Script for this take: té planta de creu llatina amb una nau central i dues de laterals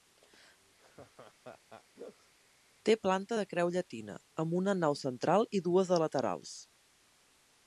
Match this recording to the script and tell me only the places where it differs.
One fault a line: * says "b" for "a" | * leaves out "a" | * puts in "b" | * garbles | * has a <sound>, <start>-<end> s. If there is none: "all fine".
* has a laugh, 0.8-2.3 s